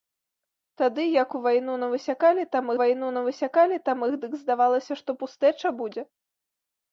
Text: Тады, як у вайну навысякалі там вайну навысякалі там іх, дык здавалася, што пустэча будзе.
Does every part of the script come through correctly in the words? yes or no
yes